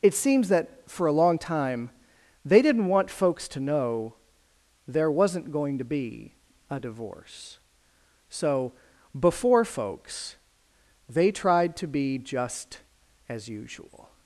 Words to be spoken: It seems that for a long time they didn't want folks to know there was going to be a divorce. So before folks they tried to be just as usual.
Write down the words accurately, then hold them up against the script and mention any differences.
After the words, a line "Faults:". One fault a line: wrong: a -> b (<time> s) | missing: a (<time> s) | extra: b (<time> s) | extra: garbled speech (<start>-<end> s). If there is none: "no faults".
It seems that for a long time they didn't want folks to know there wasn't going to be a divorce. So before folks they tried to be just as usual.
Faults:
wrong: was -> wasn't (5.1 s)